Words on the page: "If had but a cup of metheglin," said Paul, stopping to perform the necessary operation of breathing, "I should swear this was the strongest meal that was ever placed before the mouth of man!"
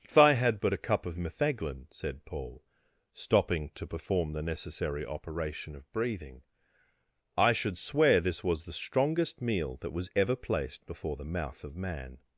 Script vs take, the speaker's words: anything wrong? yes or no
yes